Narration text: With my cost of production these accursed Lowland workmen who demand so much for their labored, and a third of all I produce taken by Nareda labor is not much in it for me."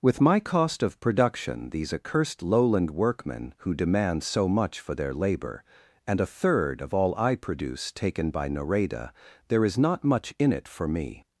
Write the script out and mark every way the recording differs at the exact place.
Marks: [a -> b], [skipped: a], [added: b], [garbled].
With my cost of production these accursed Lowland workmen who demand so much for their [labored, -> labor] and a third of all I produce taken by Nareda [labor -> there] is not much in it for me."